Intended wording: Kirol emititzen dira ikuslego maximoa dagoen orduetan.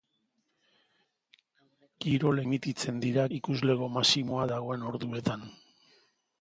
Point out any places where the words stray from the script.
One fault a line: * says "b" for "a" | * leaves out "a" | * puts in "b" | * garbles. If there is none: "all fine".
all fine